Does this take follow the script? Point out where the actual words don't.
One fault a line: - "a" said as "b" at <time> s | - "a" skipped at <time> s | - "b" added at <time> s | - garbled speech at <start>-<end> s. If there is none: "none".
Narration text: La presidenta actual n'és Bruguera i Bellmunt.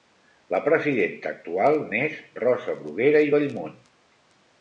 - "Rosa" added at 2.5 s